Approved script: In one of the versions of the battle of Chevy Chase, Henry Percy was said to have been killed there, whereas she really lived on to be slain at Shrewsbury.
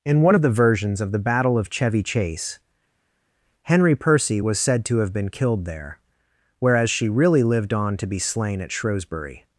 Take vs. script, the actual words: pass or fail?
pass